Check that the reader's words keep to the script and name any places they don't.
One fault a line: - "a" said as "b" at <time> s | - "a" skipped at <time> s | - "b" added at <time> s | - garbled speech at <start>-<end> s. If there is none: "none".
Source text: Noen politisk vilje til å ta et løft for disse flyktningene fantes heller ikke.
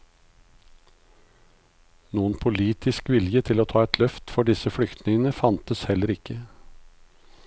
none